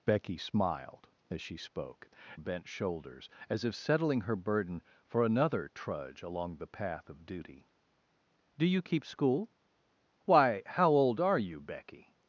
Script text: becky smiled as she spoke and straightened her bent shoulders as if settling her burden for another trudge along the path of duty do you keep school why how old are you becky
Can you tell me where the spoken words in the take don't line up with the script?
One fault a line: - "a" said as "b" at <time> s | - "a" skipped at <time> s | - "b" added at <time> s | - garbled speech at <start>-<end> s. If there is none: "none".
- "and straightened her" skipped at 2.1 s